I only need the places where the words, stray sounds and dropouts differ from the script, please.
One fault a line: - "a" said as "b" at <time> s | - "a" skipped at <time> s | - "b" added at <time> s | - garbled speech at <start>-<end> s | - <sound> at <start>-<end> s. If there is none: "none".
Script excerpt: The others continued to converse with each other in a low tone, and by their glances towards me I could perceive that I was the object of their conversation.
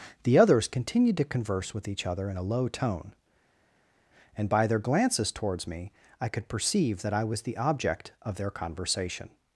none